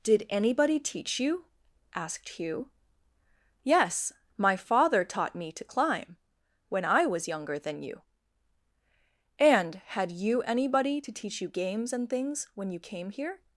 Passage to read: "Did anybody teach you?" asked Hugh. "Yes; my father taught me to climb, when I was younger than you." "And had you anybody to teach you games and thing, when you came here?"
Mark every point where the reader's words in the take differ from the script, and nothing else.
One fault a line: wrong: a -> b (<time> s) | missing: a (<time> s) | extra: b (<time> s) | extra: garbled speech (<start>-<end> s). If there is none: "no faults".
wrong: thing -> things (12.1 s)